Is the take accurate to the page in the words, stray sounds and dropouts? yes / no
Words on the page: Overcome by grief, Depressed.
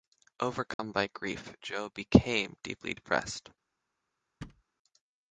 no